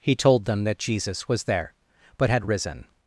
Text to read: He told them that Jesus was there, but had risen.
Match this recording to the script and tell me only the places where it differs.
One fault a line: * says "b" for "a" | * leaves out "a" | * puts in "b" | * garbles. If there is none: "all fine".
all fine